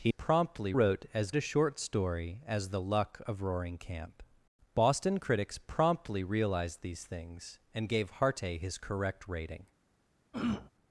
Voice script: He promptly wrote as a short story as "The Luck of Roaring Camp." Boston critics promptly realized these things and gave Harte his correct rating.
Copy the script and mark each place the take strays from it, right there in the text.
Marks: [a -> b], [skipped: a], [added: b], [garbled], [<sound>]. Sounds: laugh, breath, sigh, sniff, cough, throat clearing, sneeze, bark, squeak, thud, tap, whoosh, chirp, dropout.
He promptly wrote as a short story as "The Luck of Roaring Camp." Boston critics promptly realized these things and gave Harte his correct rating. [throat clearing]